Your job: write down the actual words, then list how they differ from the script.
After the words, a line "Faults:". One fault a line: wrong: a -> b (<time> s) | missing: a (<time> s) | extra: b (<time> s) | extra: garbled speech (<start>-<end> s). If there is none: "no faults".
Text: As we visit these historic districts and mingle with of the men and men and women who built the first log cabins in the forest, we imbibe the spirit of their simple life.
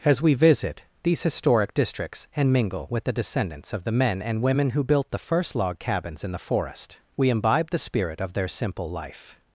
As we visit these historic districts and mingle with the descendants of the men and women who built the first log cabins in the forest, we imbibe the spirit of their simple life.
Faults:
extra: the descendants (3.0 s)
missing: men and (4.4 s)